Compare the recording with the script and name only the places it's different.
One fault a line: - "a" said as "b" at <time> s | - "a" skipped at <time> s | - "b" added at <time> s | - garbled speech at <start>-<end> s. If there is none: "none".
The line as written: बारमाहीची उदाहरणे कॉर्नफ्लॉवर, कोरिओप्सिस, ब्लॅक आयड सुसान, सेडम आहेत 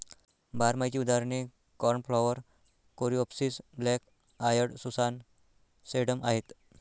none